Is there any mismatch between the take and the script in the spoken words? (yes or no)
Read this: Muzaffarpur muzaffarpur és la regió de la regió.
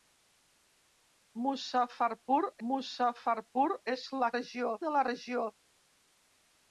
no